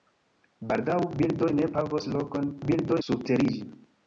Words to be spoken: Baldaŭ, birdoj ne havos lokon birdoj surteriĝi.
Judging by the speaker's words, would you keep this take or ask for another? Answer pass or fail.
pass